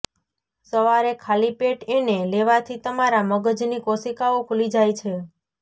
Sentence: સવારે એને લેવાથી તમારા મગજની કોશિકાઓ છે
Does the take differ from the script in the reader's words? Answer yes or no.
yes